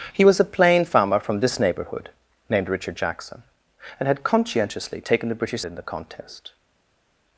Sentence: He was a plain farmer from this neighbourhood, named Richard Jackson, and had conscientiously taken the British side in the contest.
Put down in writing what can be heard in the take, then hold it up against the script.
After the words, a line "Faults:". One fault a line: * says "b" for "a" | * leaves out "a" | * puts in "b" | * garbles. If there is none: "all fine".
He was a plain farmer from this neighbourhood, named Richard Jackson, and had conscientiously taken the British in the contest.
Faults:
* leaves out "side"